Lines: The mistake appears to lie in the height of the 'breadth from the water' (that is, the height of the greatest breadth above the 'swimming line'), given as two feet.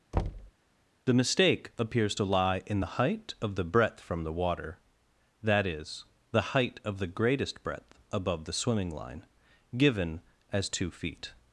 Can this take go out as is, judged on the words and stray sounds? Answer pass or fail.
fail